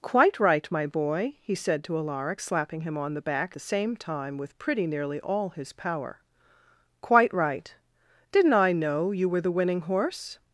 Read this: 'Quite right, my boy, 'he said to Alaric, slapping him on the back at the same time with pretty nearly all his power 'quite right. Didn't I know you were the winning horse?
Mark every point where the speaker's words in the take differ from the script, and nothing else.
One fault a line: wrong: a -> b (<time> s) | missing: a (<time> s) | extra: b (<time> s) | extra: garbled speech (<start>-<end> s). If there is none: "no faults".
missing: at (3.5 s)